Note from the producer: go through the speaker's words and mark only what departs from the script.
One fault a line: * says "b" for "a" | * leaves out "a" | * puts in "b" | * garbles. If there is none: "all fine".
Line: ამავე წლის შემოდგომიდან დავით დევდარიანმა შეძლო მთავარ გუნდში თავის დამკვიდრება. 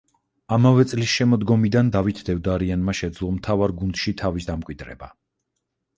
all fine